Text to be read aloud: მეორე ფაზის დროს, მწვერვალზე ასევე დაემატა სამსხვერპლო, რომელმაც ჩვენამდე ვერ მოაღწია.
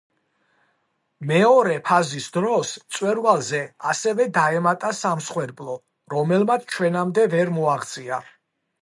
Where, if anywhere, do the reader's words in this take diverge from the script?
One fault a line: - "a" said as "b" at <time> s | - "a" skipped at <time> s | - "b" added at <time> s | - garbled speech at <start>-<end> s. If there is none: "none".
none